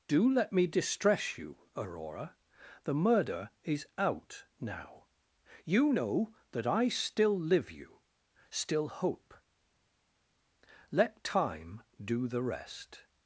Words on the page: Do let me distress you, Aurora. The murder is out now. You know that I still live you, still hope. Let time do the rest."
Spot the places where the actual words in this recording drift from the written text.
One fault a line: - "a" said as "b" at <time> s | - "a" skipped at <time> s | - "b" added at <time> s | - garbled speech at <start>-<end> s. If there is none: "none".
none